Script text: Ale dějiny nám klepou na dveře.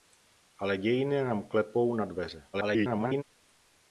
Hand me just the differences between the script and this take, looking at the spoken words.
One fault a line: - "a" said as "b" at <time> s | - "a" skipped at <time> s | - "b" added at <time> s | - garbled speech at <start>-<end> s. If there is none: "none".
- garbled speech at 2.5-3.2 s